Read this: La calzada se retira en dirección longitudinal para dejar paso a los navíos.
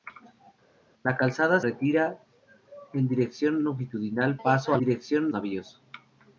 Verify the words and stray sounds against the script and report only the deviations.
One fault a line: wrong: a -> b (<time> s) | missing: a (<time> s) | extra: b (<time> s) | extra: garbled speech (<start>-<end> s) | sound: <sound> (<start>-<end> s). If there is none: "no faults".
missing: se (1.6 s)
missing: para dejar (4.4 s)
wrong: los -> dirección (4.8 s)